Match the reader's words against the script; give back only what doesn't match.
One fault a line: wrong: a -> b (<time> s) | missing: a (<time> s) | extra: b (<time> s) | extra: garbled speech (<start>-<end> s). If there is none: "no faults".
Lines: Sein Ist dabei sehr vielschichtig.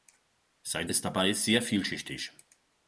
no faults